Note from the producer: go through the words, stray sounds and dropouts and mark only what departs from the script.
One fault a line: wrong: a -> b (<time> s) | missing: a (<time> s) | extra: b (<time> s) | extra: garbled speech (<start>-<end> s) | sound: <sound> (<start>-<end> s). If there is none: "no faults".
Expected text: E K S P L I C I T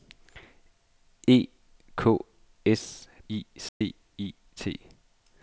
missing: P L (3.0 s)
sound: dropout (3.7-3.8 s)